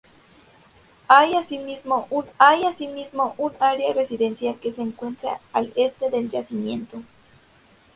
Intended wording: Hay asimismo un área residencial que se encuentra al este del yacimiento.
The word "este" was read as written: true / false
true